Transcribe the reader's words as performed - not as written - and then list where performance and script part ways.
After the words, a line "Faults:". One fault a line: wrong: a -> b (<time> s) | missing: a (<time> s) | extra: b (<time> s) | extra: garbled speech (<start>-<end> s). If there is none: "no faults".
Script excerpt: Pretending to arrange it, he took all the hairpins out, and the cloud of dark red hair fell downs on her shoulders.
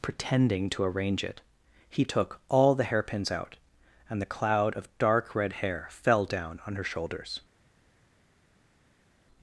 Pretending to arrange it, he took all the hairpins out, and the cloud of dark red hair fell down on her shoulders.
Faults:
wrong: downs -> down (6.3 s)